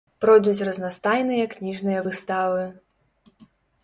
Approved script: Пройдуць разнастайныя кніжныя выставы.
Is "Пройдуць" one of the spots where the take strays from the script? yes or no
no